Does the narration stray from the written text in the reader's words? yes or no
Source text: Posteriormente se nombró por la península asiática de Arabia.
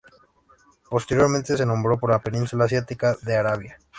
no